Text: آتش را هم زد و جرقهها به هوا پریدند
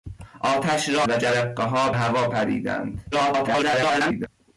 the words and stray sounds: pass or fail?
fail